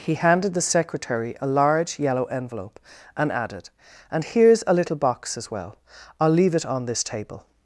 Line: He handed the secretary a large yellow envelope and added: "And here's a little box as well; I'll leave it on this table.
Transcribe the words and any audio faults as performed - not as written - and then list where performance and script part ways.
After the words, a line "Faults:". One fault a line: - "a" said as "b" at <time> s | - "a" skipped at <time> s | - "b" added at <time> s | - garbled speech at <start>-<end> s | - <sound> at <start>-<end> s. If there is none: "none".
He handed the secretary a large yellow envelope and added: "And here's a little box as well; I'll leave it on this table.
Faults:
none